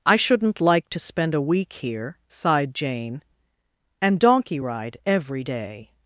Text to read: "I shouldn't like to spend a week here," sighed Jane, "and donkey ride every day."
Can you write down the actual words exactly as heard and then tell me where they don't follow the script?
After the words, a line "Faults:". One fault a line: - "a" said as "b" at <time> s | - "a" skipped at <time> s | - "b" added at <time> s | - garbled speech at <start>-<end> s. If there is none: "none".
"I shouldn't like to spend a week here," sighed Jane, "and donkey ride every day."
Faults:
none